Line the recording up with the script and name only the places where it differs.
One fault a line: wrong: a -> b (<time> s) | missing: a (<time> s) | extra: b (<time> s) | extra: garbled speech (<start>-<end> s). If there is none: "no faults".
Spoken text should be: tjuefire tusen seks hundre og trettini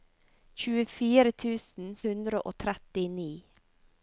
missing: seks (1.9 s)